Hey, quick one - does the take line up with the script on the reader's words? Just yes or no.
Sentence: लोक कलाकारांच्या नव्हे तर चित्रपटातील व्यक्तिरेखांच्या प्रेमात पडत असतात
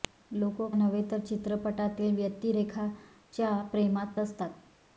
no